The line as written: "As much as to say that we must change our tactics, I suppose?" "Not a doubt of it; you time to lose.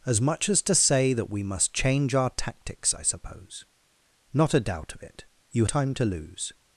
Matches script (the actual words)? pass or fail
pass